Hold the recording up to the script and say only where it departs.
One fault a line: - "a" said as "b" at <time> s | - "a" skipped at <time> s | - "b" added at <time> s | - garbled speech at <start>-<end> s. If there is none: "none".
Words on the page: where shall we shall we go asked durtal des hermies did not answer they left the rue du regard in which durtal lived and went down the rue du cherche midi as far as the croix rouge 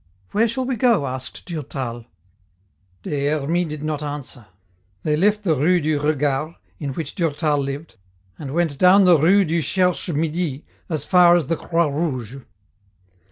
- "shall we" skipped at 0.8 s